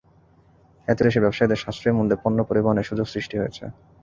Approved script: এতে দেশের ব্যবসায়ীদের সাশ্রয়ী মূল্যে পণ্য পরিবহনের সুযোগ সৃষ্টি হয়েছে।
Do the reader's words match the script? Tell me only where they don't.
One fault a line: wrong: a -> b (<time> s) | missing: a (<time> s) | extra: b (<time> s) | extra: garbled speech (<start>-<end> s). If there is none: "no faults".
no faults